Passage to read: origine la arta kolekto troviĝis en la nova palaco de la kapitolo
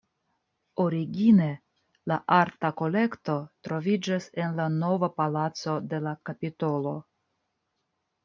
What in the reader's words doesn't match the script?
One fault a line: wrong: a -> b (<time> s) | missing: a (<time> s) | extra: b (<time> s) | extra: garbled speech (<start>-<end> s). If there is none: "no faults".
no faults